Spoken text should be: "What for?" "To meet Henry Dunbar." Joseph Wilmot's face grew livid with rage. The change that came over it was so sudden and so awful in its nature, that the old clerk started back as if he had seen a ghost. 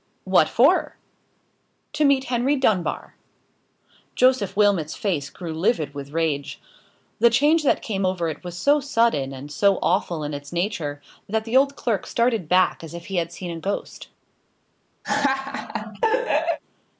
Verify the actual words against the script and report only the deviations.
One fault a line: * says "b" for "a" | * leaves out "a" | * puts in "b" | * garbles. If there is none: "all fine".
all fine